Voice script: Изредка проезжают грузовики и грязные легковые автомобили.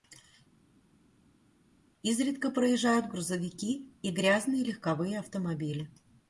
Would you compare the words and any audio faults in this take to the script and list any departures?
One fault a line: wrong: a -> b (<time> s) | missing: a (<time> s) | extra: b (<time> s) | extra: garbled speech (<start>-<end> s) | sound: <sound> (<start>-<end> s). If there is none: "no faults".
no faults